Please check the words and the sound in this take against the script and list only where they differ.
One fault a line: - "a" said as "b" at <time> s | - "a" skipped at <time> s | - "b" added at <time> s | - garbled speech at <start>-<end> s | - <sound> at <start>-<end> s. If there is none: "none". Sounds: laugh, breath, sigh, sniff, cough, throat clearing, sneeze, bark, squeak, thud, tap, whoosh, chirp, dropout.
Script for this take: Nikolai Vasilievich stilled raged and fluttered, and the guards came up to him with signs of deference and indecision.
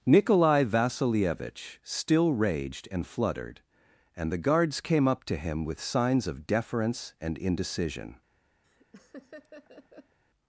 - "stilled" said as "still" at 1.8 s
- laugh at 8.6-10.2 s